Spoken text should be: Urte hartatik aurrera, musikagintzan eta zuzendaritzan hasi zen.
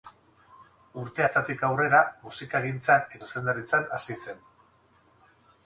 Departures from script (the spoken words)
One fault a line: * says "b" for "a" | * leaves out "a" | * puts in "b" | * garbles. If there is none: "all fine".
* leaves out "eta"